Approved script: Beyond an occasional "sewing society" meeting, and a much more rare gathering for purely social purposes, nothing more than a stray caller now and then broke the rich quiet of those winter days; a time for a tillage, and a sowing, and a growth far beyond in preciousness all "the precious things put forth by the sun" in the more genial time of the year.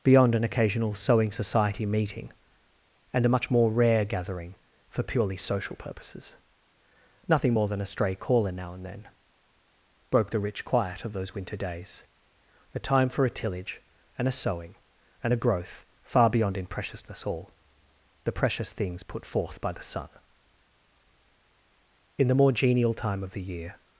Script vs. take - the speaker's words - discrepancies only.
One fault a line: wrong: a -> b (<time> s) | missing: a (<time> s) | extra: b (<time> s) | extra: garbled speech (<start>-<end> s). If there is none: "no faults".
no faults